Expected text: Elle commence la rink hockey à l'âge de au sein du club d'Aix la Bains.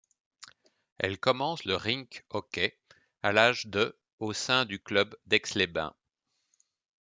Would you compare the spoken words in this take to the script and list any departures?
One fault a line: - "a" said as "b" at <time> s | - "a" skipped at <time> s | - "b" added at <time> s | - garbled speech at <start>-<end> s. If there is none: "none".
- "la" said as "le" at 1.6 s
- "la" said as "les" at 5.5 s